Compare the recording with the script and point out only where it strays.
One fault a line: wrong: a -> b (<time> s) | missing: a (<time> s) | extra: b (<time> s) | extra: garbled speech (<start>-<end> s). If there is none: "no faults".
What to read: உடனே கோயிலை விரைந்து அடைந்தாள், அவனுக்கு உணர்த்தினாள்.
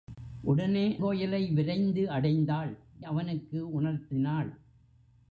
no faults